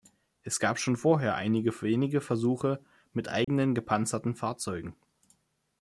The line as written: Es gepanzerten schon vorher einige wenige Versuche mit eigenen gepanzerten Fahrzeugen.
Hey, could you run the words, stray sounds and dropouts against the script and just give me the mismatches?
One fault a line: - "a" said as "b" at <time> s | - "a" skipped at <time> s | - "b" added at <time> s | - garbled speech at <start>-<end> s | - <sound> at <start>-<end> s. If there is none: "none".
- "gepanzerten" said as "gab" at 0.6 s
- dropout at 3.4-3.5 s